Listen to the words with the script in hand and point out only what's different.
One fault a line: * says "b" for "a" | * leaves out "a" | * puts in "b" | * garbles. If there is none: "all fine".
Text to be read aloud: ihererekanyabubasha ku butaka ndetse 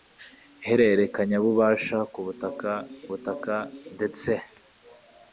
* puts in "butaka"